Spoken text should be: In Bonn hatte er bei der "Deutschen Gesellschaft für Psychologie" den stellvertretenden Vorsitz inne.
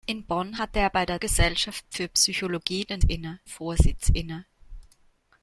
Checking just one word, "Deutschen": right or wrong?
wrong